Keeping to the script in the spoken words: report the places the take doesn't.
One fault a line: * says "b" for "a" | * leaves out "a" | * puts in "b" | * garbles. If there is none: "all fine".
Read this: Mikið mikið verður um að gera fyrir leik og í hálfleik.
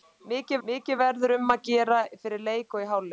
all fine